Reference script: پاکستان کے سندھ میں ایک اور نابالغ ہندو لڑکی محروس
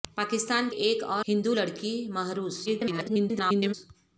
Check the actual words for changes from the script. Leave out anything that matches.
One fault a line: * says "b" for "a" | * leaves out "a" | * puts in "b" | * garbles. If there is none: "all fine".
* leaves out "کے سندھ میں"
* leaves out "نابالغ"
* garbles